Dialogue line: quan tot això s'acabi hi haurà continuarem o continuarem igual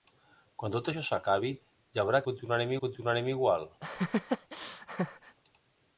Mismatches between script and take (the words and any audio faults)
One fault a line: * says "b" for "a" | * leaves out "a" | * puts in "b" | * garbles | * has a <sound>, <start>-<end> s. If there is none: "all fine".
* has a laugh, 3.8-5.4 s